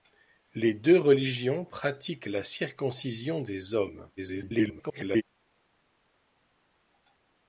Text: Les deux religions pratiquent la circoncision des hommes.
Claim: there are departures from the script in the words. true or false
true